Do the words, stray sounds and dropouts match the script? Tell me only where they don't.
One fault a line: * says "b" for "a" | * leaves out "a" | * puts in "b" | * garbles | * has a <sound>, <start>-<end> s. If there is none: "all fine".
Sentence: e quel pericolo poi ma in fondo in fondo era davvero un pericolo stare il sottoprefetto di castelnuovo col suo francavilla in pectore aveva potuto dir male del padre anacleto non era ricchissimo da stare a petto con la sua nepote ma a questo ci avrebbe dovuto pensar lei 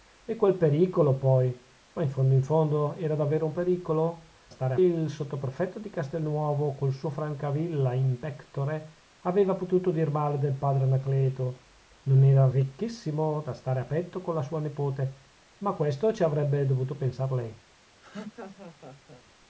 * has a laugh, 18.0-19.2 s